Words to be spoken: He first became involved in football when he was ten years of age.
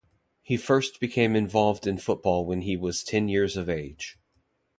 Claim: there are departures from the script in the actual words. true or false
false